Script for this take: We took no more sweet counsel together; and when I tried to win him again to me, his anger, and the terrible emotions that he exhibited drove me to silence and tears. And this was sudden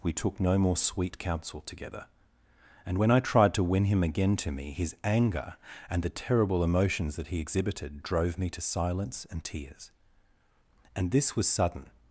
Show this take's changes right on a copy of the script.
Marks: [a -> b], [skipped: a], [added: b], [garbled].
We took no more sweet counsel together; and when I tried to win him again to me, his anger, and the terrible emotions that he exhibited drove me to silence and tears. And this was sudden